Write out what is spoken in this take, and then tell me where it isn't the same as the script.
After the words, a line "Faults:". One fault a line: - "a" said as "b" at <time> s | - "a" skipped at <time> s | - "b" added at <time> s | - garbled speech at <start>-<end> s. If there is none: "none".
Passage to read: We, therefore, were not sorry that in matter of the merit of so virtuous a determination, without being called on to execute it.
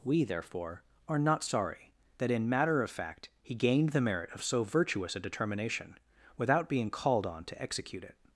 We, therefore, are not sorry that in matter of fact he gained the merit of so virtuous a determination, without being called on to execute it.
Faults:
- "were" said as "are" at 1.1 s
- "fact he gained" added at 2.9 s